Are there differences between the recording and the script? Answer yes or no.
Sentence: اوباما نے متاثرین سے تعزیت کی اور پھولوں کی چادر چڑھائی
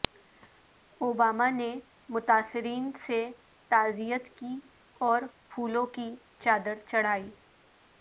no